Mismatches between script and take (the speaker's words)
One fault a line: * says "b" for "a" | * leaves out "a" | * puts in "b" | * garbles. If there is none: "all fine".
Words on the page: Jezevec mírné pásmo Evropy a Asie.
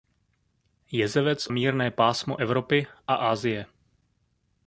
all fine